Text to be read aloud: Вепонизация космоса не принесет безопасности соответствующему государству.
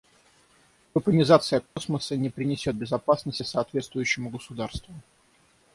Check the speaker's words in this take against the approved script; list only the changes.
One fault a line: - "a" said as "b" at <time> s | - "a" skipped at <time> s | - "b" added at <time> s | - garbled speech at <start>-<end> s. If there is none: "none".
none